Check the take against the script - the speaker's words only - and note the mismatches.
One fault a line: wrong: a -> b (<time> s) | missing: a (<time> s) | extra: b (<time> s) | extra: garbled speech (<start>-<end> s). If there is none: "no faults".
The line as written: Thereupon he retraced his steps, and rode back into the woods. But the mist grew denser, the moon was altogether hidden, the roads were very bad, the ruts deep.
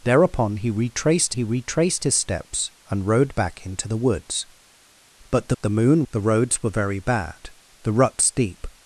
extra: he retraced (1.3 s)
missing: mist grew denser (5.6 s)
missing: was altogether hidden (6.0 s)